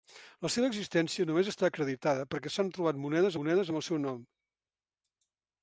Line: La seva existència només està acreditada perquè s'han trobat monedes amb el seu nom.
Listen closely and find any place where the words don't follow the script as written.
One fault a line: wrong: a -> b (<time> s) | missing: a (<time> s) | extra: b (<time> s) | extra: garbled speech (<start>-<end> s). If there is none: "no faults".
extra: monedes (3.4 s)